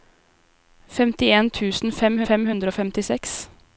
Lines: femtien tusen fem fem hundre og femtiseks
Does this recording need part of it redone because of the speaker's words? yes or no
no